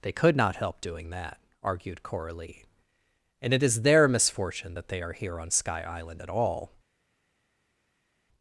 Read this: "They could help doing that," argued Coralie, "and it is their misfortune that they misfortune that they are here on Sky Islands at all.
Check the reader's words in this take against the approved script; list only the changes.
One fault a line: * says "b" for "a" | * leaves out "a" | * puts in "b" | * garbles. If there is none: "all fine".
* puts in "not"
* leaves out "misfortune that they"
* says "Island" for "Islands"